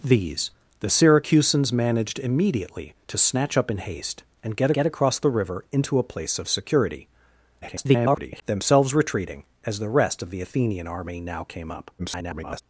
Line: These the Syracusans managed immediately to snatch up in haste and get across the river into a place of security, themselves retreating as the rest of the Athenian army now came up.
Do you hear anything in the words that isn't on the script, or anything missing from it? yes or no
yes